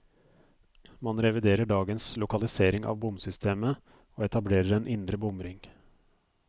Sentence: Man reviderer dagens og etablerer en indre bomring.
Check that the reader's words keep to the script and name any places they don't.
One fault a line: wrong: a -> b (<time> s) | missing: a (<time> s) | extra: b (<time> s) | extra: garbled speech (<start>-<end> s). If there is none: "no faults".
extra: lokalisering av bomsystemet (2.2 s)